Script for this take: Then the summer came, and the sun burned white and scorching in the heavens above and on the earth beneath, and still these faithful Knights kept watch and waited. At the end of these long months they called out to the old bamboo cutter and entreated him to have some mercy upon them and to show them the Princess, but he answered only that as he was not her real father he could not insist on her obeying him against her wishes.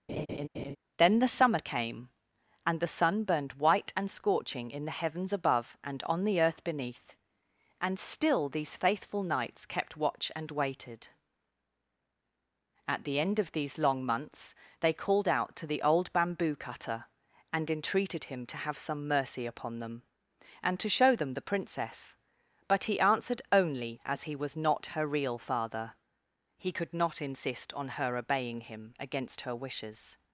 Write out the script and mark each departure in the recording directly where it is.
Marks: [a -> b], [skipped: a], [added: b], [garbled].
Then the summer came, and the sun burned white and scorching in the heavens above and on the earth beneath, and still these faithful Knights kept watch and waited. At the end of these long months they called out to the old bamboo cutter and entreated him to have some mercy upon them and to show them the Princess, but he answered only [skipped: that] as he was not her real father he could not insist on her obeying him against her wishes.